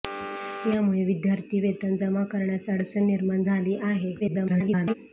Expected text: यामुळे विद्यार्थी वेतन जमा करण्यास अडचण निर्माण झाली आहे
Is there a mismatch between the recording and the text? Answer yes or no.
yes